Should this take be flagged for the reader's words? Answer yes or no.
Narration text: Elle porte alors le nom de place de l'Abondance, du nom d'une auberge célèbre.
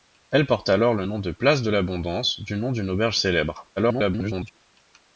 yes